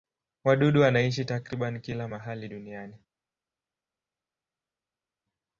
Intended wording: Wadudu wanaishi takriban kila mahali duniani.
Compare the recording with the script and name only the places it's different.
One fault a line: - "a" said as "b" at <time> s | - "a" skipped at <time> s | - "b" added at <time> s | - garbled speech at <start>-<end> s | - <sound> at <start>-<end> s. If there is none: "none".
none